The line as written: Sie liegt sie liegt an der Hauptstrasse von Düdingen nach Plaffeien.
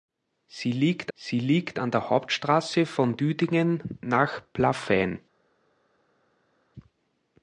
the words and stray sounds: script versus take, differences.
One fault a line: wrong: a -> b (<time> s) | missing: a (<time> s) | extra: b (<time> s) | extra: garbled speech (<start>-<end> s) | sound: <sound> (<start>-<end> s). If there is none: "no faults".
no faults